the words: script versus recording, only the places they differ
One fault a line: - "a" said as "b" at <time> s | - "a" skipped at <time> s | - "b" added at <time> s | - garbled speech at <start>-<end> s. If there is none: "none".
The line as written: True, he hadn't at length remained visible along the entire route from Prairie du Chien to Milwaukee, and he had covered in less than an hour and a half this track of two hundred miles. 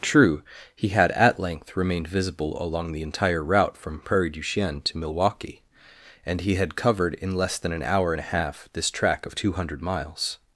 - "hadn't" said as "had" at 0.9 s